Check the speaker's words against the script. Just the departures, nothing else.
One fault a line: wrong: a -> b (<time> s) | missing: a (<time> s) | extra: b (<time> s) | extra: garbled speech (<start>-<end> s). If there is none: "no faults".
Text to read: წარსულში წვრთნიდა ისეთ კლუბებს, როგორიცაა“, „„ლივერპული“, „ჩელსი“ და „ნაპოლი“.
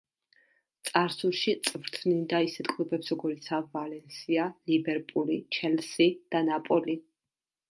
extra: ვალენსია (3.7 s)